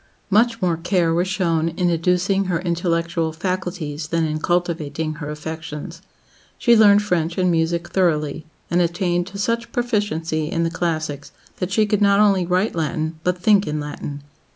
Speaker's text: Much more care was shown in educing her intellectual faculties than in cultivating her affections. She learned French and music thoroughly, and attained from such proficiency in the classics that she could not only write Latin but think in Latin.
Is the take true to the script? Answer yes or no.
no